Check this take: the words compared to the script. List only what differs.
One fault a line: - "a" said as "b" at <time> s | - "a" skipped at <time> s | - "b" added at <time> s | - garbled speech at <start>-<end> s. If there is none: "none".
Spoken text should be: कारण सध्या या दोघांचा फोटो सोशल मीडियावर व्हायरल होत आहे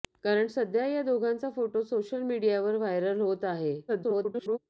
- garbled speech at 3.9-4.6 s